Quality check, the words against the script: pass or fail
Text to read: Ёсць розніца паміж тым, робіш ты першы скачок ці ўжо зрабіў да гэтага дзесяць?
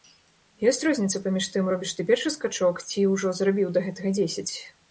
pass